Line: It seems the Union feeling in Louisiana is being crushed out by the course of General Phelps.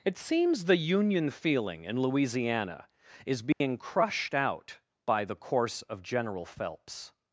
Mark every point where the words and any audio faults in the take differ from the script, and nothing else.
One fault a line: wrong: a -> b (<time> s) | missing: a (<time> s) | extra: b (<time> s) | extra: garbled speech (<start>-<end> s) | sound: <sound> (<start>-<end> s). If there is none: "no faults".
sound: dropout (3.5-3.6 s)